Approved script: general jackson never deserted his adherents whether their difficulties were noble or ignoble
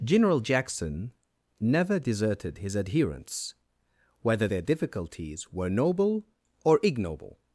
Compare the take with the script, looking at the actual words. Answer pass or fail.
pass